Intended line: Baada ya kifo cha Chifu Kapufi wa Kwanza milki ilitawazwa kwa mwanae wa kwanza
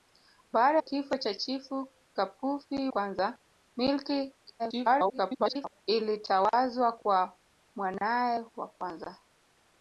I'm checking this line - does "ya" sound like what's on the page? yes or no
no